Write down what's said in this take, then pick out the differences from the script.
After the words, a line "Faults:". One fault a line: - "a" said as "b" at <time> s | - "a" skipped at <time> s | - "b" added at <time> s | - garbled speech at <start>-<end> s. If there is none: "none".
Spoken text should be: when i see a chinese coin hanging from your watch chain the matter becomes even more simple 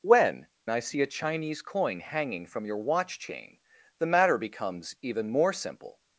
when i see a chinese coin hanging from your watch chain the matter becomes even more simple
Faults:
none